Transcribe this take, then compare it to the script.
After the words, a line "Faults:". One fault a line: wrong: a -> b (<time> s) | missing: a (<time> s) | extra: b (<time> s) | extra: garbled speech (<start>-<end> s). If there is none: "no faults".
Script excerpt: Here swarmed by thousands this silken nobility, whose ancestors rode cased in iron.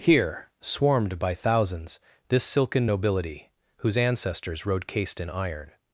Here swarmed by thousands this silken nobility, whose ancestors rode cased in iron.
Faults:
no faults